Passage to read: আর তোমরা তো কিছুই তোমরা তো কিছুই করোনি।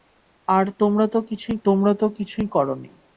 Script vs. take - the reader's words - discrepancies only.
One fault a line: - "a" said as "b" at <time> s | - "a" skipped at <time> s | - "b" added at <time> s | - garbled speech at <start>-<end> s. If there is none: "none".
none